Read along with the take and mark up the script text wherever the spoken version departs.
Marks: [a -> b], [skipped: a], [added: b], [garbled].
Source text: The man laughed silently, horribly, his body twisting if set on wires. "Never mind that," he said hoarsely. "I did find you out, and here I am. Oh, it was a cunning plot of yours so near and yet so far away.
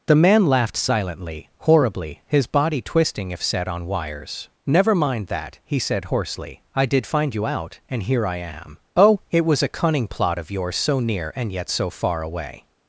The man laughed silently, horribly, his body twisting if set on wires. "Never mind that," he said hoarsely. "I did find you out, and here I am. Oh, it was a cunning plot of yours so near and yet so far away.